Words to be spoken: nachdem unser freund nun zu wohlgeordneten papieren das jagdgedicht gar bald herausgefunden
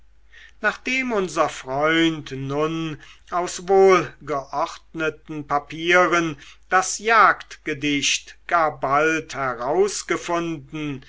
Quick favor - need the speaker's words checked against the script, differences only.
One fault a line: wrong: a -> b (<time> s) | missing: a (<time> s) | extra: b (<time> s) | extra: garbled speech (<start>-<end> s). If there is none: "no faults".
wrong: zu -> aus (3.3 s)